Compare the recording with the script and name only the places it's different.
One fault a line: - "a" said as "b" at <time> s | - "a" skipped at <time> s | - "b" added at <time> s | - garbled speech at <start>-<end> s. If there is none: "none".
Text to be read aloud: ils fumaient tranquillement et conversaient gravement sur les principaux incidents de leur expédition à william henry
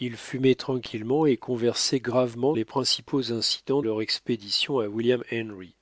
- "sur" skipped at 2.5 s
- "de" skipped at 3.8 s